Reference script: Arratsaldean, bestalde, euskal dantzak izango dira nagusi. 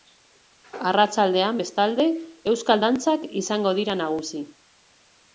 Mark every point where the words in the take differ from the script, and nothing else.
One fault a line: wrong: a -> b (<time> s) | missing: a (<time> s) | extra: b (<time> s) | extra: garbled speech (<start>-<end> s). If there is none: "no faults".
no faults